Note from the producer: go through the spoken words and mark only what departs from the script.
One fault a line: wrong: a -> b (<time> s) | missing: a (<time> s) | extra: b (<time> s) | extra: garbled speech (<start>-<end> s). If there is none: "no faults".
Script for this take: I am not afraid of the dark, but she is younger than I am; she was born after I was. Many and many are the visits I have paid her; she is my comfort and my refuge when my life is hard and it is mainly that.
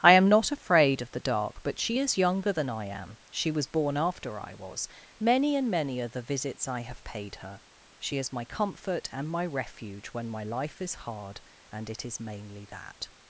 no faults